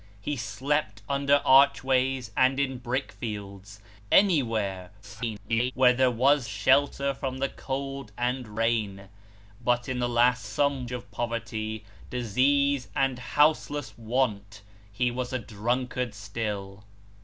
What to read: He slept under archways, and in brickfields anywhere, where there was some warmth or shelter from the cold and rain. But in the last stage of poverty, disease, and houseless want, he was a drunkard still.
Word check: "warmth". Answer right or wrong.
wrong